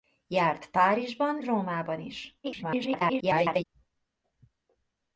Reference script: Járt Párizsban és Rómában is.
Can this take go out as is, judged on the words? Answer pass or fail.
fail